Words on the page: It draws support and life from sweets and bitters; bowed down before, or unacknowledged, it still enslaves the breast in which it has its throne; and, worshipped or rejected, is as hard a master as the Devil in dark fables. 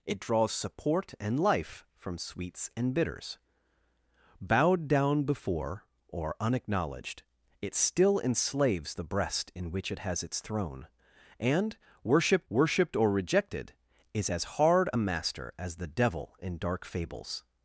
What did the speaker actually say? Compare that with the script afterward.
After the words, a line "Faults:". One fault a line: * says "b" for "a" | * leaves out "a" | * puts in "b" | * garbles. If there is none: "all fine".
It draws support and life from sweets and bitters; bowed down before, or unacknowledged, it still enslaves the breast in which it has its throne; and, worshipped worshipped or rejected, is as hard a master as the Devil in dark fables.
Faults:
* puts in "worshipped"